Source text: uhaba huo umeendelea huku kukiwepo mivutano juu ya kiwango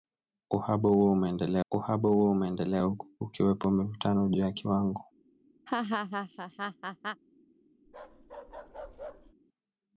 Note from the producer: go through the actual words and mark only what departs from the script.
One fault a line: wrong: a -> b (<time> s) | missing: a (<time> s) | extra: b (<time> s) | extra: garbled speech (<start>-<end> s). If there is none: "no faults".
extra: uhaba huo umeendelea (1.7 s)